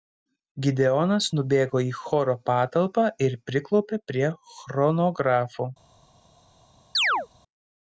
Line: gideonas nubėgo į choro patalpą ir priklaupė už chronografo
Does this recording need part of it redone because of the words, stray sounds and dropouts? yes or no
yes